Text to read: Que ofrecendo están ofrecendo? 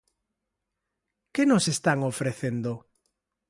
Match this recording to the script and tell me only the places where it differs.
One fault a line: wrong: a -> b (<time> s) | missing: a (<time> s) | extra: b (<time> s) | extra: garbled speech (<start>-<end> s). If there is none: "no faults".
wrong: ofrecendo -> nos (1.4 s)